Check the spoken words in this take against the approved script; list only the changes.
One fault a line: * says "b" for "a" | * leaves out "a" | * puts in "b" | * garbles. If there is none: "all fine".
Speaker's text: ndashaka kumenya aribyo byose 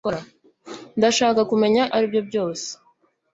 all fine